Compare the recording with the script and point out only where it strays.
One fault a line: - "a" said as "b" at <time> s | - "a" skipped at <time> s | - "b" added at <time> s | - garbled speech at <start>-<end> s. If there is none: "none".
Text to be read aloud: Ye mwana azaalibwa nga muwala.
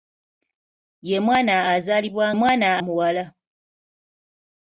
- "nga" said as "mwana" at 2.4 s